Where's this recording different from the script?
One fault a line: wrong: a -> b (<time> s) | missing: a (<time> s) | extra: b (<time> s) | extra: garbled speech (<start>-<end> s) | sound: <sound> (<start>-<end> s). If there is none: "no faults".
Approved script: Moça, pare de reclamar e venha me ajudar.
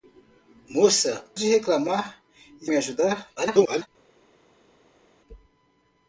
missing: pare (1.2 s)
missing: venha (2.7 s)
extra: garbled speech (3.4-3.9 s)